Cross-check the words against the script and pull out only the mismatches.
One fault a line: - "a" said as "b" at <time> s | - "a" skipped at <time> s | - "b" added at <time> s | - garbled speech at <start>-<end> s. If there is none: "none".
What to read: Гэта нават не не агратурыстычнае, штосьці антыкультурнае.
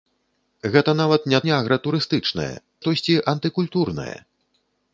none